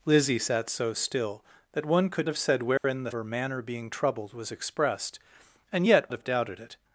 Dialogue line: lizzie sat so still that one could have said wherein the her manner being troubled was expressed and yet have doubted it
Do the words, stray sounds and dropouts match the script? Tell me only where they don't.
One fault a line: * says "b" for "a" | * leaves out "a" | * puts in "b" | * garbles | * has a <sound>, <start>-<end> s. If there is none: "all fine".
* has a dropout, 2.8-2.8 s